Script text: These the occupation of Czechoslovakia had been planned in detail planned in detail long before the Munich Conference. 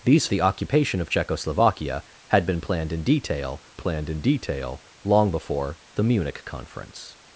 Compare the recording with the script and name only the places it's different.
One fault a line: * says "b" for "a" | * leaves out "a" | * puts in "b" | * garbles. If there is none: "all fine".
all fine